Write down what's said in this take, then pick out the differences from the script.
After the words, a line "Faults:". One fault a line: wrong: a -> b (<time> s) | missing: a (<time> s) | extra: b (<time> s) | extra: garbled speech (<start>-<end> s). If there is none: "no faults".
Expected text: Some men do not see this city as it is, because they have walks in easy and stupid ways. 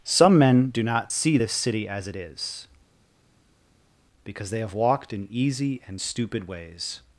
Some men do not see this city as it is, because they have walked in easy and stupid ways.
Faults:
wrong: walks -> walked (4.7 s)